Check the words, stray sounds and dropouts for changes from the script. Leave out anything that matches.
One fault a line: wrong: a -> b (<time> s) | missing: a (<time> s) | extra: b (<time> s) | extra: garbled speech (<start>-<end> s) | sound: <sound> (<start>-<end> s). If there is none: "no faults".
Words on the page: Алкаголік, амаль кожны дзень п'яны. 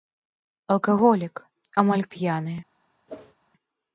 missing: кожны дзень (2.1 s)
sound: whoosh (3.1-3.3 s)